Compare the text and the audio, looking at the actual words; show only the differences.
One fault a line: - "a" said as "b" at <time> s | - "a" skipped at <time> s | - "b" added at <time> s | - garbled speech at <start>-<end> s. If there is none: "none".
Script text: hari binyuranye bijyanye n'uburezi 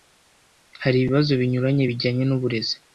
- "ibibazo" added at 1.0 s